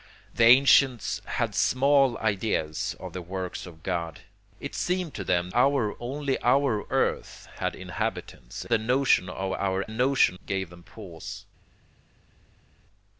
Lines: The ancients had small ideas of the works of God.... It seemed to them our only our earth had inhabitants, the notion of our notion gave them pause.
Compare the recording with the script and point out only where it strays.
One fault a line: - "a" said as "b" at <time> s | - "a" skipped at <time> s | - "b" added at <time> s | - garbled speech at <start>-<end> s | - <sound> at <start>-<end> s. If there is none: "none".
none